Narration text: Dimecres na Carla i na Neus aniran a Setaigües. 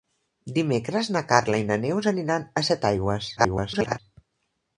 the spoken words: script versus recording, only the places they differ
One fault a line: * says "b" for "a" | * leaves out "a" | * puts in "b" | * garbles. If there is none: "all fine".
* garbles